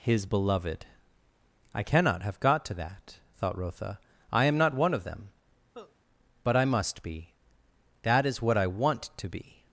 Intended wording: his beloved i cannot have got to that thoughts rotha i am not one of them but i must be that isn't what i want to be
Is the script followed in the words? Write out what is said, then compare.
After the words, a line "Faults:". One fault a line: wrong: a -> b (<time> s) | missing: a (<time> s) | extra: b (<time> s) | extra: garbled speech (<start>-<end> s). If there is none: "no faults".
his beloved i cannot have got to that thought rotha i am not one of them but i must be that is what i want to be
Faults:
wrong: thoughts -> thought (3.4 s)
wrong: isn't -> is (8.2 s)